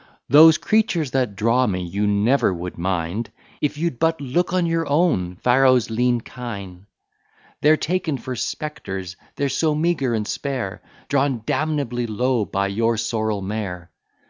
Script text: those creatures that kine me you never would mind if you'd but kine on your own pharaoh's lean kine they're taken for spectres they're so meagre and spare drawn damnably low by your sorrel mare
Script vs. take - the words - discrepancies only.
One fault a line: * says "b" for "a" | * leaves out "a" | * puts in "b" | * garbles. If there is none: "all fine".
* says "draw" for "kine"
* says "look" for "kine"